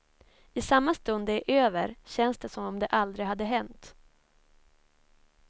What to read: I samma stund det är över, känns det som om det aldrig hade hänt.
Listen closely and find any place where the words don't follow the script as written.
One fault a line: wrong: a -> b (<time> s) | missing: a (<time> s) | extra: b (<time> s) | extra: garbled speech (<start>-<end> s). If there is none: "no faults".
no faults